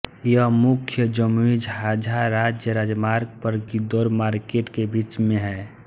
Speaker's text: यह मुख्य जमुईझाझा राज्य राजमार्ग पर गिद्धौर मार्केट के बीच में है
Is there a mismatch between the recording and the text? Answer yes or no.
no